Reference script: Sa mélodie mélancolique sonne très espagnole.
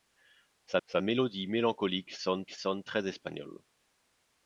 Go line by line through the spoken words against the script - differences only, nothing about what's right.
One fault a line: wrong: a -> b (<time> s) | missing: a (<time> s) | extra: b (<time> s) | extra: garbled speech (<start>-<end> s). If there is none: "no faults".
extra: sa (0.8 s)
extra: sonne (2.5 s)